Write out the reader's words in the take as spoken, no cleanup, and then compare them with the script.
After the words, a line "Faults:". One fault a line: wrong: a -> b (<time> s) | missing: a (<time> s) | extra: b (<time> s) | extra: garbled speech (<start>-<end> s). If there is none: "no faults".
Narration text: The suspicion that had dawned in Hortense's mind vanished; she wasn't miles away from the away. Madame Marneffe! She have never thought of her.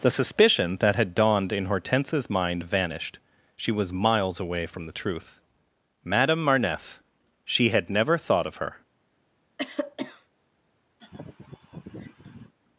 The suspicion that had dawned in Hortense's mind vanished; she was miles away from the truth. Madame Marneffe! She had never thought of her.
Faults:
wrong: wasn't -> was (3.7 s)
wrong: away -> truth (4.9 s)
wrong: have -> had (7.7 s)